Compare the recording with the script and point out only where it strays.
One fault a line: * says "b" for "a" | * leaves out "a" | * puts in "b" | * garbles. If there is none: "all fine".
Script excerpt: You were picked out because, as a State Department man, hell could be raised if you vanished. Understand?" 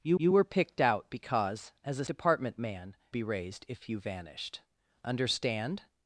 * puts in "you"
* leaves out "State"
* leaves out "hell could"